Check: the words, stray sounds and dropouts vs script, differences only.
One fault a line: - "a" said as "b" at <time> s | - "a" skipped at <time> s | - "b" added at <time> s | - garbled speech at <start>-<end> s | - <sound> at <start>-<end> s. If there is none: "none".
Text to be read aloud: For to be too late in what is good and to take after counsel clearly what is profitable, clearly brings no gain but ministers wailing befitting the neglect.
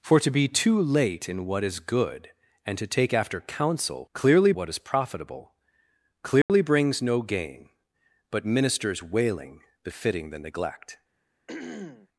- dropout at 6.4-6.5 s
- throat clearing at 11.5-12.1 s